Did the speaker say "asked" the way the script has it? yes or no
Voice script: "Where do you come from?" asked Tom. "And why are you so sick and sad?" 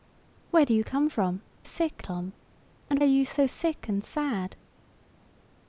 no